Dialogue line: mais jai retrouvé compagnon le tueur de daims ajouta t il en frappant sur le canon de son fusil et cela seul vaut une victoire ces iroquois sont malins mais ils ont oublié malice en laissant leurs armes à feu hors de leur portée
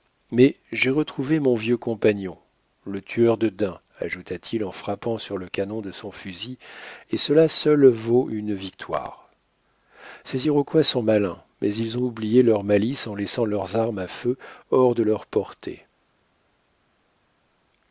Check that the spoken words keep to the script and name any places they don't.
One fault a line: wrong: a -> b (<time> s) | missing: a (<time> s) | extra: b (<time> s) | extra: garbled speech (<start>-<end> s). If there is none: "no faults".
extra: mon vieux (1.4 s)
extra: leur (12.4 s)